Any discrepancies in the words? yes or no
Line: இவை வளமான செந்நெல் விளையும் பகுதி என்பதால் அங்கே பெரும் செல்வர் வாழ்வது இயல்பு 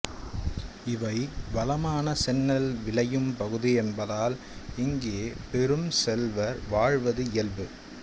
yes